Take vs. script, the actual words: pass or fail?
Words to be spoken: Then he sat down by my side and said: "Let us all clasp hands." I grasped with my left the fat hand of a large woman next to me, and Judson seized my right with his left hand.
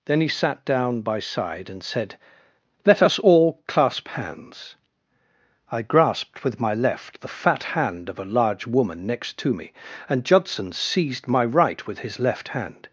fail